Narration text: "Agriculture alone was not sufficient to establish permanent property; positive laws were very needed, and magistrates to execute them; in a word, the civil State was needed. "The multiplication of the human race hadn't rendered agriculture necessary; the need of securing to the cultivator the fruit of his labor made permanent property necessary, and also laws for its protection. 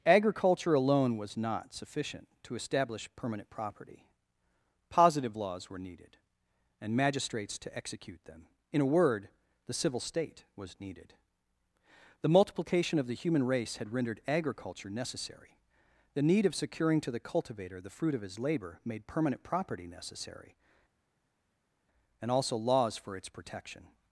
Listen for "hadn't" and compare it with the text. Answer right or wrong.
wrong